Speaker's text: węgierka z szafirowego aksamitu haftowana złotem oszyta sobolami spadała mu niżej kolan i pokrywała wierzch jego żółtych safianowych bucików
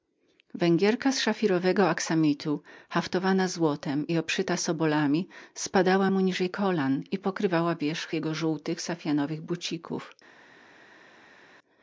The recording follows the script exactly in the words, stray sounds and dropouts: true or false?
false